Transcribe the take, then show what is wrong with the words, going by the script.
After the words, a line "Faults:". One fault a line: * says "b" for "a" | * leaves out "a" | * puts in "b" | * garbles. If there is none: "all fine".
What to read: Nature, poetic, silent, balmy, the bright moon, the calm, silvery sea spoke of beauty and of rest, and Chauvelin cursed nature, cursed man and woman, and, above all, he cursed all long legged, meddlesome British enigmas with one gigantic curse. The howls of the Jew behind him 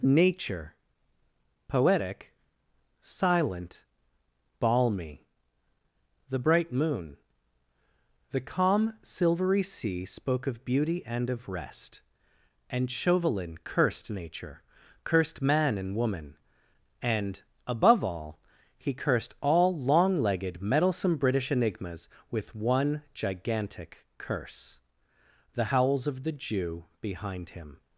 Nature, poetic, silent, balmy, the bright moon, the calm, silvery sea spoke of beauty and of rest, and Chauvelin cursed nature, cursed man and woman, and, above all, he cursed all long legged, meddlesome British enigmas with one gigantic curse. The howls of the Jew behind him
Faults:
all fine